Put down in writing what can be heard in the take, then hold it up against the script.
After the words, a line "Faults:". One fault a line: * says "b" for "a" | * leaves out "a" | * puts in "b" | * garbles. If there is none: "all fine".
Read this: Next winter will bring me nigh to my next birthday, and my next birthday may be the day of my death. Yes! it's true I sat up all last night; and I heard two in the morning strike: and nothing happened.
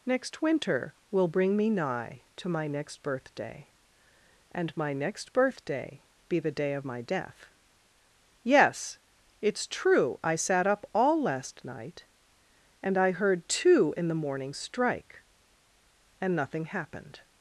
Next winter will bring me nigh to my next birthday, and my next birthday be the day of my death. Yes! it's true I sat up all last night; and I heard two in the morning strike: and nothing happened.
Faults:
* leaves out "may"